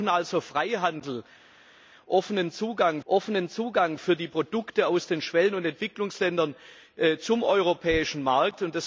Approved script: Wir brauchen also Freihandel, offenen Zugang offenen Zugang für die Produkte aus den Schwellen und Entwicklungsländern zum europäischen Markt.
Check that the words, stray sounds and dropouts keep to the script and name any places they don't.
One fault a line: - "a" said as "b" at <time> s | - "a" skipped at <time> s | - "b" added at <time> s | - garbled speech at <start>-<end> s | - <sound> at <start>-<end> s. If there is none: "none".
none